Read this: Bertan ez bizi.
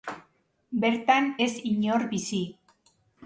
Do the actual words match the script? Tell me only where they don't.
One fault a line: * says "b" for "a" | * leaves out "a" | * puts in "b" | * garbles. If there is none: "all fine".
* puts in "inor"